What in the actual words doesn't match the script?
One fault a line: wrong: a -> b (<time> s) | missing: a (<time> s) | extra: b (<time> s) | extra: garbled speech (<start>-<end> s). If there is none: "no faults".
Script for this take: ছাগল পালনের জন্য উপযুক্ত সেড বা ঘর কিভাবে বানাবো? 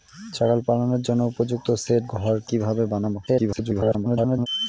missing: বা (2.0 s)
extra: garbled speech (3.3-4.5 s)